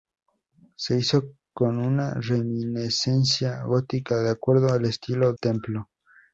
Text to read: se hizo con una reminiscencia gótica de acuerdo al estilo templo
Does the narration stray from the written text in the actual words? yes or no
no